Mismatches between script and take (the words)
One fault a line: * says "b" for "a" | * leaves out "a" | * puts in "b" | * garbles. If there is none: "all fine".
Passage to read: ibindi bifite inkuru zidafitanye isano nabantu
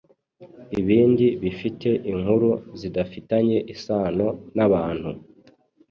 all fine